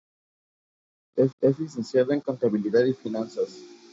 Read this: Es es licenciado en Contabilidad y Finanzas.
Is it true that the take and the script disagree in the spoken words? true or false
false